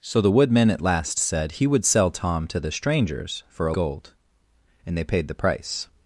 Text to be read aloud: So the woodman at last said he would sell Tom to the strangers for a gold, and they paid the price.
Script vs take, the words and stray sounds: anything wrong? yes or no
no